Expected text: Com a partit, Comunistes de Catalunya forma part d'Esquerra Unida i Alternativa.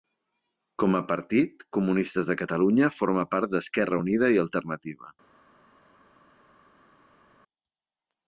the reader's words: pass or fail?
pass